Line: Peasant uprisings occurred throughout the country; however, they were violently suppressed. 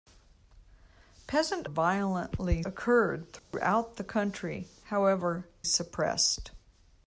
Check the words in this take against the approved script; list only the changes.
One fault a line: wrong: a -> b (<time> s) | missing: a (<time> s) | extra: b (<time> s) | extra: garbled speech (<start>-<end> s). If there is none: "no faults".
wrong: uprisings -> violently (1.6 s)
missing: they were violently (5.5 s)